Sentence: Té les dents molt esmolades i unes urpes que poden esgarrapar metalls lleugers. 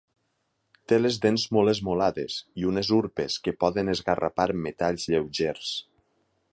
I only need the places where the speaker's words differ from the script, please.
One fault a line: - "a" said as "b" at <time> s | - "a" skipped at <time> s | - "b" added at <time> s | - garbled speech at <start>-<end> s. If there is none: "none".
none